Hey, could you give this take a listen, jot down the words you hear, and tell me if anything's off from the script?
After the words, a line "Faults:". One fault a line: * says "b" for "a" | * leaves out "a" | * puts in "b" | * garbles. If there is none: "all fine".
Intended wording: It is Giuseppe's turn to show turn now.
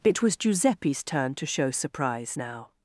It was Giuseppe's turn to show surprise now.
Faults:
* says "was" for "is"
* says "surprise" for "turn"